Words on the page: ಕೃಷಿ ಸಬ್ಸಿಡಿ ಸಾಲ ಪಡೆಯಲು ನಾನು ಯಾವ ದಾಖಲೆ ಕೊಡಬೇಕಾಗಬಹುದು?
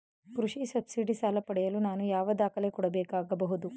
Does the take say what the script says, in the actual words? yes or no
yes